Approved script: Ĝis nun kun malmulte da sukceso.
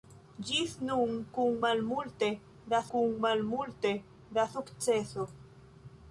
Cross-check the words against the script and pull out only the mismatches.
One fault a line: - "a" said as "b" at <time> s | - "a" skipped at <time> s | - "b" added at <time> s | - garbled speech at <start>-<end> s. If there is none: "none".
- "kun malmulte da" added at 2.9 s